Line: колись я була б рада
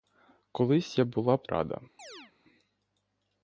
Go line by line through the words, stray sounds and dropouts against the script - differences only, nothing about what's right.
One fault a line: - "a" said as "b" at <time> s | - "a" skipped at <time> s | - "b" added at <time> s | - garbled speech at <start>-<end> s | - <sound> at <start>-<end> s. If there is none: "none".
- chirp at 2.0-2.3 s